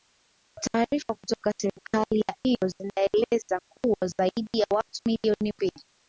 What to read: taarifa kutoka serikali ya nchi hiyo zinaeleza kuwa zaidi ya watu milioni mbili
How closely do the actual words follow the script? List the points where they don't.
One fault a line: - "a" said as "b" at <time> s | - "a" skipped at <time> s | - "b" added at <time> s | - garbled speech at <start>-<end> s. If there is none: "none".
- "nchi" skipped at 2.3 s